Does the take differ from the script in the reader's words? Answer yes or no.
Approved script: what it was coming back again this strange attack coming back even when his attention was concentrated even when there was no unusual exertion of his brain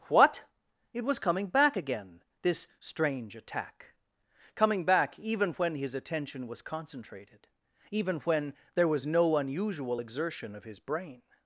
no